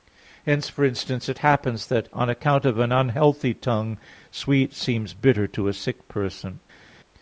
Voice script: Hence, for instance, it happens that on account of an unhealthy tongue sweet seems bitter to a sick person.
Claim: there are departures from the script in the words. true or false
false